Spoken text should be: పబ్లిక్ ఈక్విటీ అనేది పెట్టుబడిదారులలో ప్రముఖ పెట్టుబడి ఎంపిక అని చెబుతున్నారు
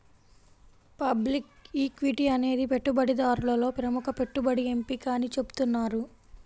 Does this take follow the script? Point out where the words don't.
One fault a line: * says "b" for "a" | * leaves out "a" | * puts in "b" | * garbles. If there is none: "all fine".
all fine